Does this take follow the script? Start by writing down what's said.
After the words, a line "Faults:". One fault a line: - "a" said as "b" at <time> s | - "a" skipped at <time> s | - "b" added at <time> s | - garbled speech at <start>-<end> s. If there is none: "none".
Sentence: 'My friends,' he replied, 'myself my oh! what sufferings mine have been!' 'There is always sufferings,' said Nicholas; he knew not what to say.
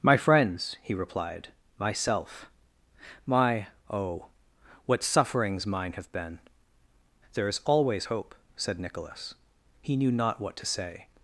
'My friends,' he replied, 'myself my oh! what sufferings mine have been!' 'There is always hope,' said Nicholas; he knew not what to say.
Faults:
- "sufferings" said as "hope" at 8.0 s